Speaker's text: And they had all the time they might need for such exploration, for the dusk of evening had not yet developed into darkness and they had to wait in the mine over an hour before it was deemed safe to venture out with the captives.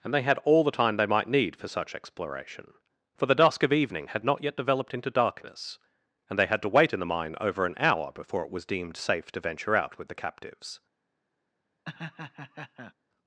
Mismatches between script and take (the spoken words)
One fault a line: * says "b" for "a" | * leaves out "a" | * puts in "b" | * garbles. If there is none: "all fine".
all fine